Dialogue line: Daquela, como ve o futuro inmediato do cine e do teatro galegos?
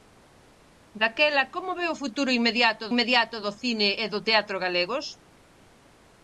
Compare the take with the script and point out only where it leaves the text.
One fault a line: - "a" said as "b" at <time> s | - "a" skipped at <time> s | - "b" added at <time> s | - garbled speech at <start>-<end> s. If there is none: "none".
- "inmediato" added at 2.9 s